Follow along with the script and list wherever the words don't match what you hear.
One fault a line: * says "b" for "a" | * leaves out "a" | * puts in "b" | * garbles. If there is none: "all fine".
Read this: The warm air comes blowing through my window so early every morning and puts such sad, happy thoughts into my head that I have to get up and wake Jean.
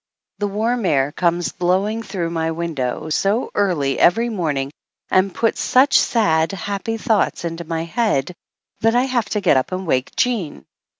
all fine